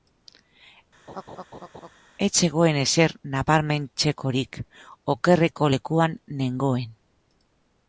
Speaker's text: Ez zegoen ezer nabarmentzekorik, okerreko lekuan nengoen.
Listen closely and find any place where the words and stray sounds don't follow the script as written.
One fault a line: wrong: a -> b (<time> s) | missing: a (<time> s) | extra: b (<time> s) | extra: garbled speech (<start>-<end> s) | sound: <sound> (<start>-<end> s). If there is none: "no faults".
sound: laugh (1.1-1.9 s)